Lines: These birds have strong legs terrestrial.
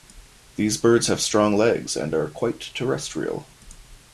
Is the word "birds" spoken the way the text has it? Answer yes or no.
yes